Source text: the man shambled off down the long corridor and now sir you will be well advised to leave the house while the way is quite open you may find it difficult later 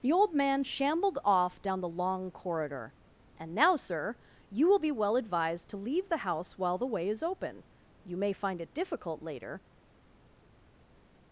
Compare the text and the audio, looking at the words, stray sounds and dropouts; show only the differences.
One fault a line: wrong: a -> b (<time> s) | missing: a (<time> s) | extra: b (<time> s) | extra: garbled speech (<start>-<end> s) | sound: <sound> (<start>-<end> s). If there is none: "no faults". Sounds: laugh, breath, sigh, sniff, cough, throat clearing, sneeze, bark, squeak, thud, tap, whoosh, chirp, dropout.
extra: old (0.1 s)
missing: quite (7.2 s)